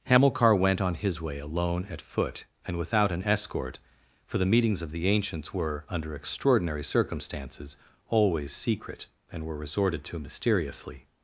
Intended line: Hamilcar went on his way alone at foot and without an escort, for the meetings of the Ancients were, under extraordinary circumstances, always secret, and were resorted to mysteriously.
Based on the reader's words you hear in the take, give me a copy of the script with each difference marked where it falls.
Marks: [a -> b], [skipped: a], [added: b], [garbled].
Hamilcar went on his way alone at foot and without an escort, for the meetings of the Ancients were, under extraordinary circumstances, always secret, and were resorted to mysteriously.